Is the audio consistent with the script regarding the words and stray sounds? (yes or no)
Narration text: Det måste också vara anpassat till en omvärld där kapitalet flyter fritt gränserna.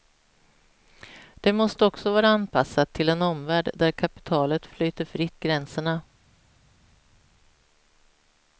yes